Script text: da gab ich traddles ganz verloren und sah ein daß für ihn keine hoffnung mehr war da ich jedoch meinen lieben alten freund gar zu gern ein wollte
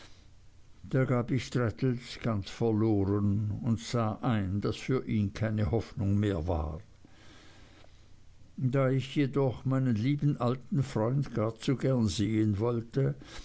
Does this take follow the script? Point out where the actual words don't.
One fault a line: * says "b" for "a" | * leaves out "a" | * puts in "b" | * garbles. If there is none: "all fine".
* says "sehen" for "ein"